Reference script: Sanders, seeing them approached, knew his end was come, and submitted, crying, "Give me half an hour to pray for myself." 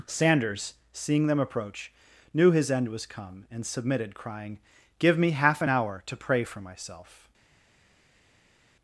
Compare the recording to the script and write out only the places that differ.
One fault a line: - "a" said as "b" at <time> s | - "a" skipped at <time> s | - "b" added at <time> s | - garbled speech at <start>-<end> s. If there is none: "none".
- "approached" said as "approach" at 1.4 s